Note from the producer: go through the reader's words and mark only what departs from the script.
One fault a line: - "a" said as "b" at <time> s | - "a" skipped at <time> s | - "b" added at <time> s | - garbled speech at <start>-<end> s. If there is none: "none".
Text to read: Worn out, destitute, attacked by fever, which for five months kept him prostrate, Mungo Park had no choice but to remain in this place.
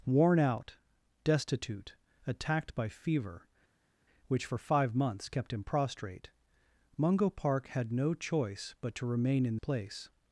- "this" skipped at 9.6 s